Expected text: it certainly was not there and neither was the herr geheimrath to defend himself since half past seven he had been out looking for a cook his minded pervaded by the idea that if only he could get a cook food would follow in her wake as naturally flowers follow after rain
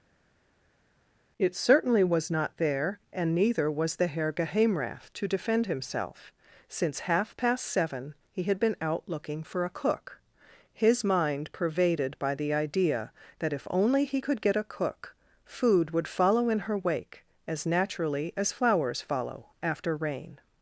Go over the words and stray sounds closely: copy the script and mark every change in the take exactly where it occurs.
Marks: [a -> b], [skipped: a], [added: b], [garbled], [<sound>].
it certainly was not there and neither was the herr geheimrath to defend himself since half past seven he had been out looking for a cook his [minded -> mind] pervaded by the idea that if only he could get a cook food would follow in her wake as naturally [added: as] flowers follow after rain